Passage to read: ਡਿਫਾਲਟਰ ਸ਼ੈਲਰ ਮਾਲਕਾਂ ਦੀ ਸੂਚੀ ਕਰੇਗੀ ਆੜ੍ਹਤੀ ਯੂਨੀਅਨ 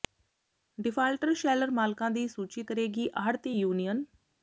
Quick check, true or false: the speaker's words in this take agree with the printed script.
true